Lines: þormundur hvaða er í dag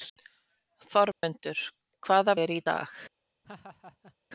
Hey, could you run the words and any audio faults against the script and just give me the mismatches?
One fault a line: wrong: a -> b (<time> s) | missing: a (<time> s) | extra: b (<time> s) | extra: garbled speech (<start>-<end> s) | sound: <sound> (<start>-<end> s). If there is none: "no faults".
sound: dropout (1.1-1.2 s)
sound: laugh (3.4-4.2 s)